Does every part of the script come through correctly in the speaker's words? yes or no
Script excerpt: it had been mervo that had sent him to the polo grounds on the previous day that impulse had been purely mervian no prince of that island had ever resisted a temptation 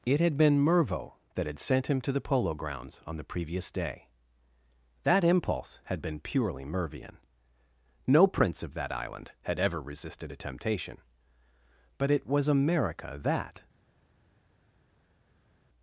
no